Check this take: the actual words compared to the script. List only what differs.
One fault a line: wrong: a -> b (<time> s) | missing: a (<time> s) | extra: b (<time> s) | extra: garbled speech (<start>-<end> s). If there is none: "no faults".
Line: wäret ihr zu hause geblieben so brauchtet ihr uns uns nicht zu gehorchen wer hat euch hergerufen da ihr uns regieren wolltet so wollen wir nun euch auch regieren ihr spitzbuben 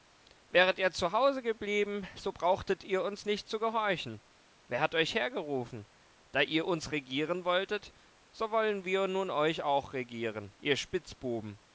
missing: uns (3.2 s)